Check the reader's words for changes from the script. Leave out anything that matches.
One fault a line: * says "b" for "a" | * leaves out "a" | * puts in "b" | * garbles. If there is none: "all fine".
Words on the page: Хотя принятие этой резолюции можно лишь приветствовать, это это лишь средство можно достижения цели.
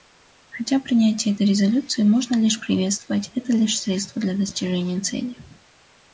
* leaves out "это"
* says "для" for "можно"